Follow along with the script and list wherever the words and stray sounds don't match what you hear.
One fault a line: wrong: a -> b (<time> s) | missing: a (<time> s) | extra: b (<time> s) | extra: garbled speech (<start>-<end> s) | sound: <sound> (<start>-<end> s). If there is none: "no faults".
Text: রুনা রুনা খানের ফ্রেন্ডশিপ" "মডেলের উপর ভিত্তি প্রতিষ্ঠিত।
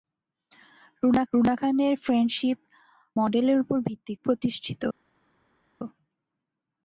no faults